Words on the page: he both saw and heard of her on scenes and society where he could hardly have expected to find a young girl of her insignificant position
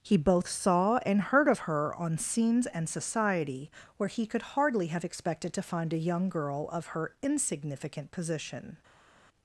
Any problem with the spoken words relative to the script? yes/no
no